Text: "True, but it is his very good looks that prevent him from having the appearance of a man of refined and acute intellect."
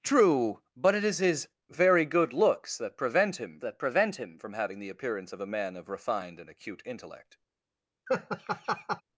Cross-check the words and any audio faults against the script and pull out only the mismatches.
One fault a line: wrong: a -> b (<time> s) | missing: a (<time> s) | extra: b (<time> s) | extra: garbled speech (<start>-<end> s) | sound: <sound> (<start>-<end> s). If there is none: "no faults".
extra: that prevent him (3.6 s)
sound: laugh (8.1-9.0 s)